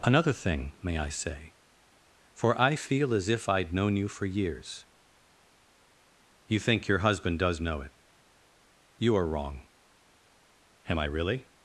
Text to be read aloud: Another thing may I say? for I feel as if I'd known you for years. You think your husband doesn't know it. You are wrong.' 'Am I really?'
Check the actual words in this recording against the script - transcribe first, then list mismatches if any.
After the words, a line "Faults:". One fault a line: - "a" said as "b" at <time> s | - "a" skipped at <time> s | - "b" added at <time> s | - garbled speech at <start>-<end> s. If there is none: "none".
Another thing may I say? for I feel as if I'd known you for years. You think your husband does know it. You are wrong.' 'Am I really?'
Faults:
- "doesn't" said as "does" at 7.4 s